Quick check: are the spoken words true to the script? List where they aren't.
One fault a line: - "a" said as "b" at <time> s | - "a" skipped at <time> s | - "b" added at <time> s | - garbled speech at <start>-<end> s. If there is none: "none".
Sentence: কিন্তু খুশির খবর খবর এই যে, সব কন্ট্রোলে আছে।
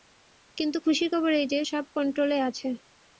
- "খবর" skipped at 1.3 s